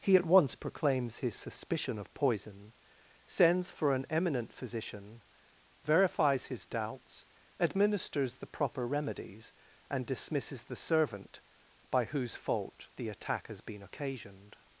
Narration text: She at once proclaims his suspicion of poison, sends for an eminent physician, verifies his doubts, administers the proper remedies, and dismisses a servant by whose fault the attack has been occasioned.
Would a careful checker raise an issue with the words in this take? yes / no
yes